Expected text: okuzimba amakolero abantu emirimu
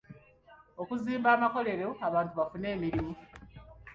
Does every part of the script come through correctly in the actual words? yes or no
no